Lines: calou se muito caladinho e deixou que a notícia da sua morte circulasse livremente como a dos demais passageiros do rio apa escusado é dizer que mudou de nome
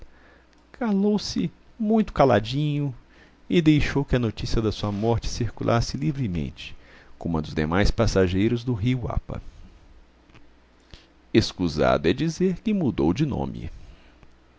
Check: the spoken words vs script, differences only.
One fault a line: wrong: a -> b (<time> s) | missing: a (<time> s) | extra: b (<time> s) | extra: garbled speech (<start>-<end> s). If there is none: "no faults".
no faults